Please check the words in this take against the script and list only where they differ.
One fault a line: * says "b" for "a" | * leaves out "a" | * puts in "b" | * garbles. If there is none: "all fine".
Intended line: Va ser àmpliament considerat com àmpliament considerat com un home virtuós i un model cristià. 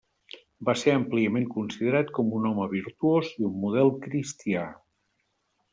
* leaves out "àmpliament considerat com"